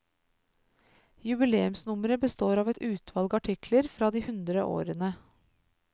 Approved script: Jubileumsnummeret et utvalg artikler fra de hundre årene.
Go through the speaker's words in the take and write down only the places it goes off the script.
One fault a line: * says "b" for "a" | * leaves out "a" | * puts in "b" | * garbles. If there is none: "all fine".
* puts in "består av"